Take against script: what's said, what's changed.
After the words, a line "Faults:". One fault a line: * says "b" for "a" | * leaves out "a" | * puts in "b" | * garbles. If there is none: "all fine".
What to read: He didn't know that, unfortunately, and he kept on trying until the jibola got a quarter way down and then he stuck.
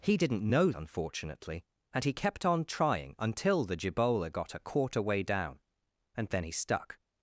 He didn't know unfortunately, and he kept on trying until the jibola got a quarter way down and then he stuck.
Faults:
* leaves out "that"